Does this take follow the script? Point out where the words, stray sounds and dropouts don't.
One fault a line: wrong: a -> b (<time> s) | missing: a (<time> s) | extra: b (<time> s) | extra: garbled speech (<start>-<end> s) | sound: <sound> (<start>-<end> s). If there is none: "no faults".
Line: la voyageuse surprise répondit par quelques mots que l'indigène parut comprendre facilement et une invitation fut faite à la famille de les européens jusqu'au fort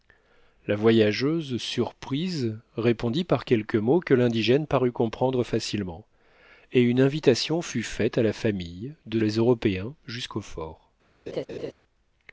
sound: laugh (11.3-11.7 s)